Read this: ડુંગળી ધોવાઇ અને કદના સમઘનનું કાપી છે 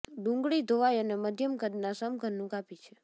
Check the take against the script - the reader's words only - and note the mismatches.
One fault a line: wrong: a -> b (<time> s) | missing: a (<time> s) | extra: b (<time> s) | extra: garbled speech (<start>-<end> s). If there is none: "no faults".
extra: મધ્યમ (1.2 s)